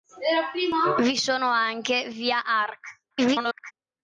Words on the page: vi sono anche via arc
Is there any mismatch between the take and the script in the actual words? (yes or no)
yes